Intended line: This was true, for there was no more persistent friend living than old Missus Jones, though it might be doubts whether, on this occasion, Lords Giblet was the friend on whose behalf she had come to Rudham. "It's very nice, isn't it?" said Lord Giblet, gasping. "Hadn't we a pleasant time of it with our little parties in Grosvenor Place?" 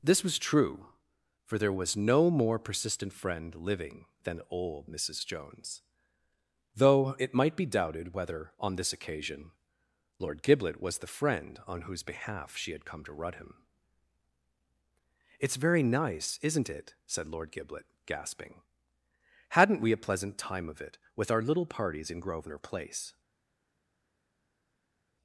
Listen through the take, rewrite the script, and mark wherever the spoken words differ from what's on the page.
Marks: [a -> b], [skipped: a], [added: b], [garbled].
This was true, for there was no more persistent friend living than old Missus Jones, though it might be [doubts -> doubted] whether, on this occasion, [Lords -> Lord] Giblet was the friend on whose behalf she had come to Rudham. "It's very nice, isn't it?" said Lord Giblet, gasping. "Hadn't we a pleasant time of it with our little parties in Grosvenor Place?"